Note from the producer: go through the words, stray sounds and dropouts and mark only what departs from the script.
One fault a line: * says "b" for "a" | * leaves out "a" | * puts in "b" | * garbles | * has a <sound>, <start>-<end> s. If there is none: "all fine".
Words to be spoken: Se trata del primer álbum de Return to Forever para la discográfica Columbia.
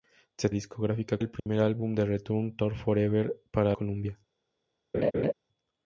* says "discográfica" for "trata"
* has a dropout, 1.4-1.5 s
* leaves out "la discográfica"
* has a laugh, 4.9-5.3 s